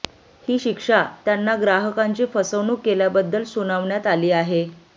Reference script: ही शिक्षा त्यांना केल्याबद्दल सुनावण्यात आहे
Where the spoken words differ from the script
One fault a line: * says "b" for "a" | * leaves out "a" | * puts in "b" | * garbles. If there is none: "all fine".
* puts in "ग्राहकांची फसवणूक"
* puts in "आली"